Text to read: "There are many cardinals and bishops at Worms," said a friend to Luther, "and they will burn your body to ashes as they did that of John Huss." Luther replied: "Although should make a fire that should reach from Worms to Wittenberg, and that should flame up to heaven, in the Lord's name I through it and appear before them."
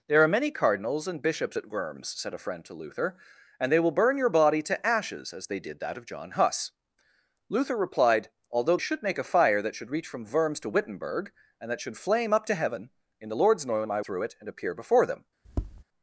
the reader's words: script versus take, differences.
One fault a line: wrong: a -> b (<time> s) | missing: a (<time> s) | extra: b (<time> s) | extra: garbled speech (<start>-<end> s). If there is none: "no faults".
no faults